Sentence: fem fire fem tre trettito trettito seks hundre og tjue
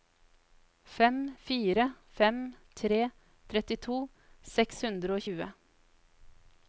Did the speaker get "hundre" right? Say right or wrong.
right